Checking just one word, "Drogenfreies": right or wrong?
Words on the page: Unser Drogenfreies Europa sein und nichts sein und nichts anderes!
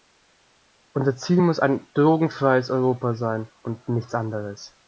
wrong